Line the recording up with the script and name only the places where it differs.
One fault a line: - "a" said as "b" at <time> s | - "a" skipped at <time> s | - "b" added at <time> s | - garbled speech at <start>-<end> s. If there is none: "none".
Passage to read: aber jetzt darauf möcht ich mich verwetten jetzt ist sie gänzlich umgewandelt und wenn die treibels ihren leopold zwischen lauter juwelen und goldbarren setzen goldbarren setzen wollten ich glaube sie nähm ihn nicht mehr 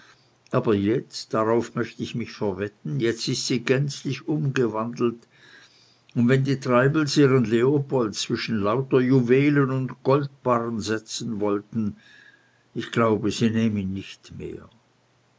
- "goldbarren setzen" skipped at 11.4 s